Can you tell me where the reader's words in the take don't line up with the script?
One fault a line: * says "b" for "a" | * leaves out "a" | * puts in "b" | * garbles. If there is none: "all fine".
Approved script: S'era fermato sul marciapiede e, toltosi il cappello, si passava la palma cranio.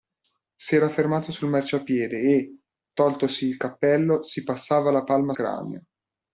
all fine